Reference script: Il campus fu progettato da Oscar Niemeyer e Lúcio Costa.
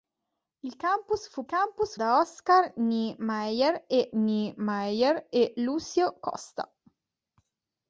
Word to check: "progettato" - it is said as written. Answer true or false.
false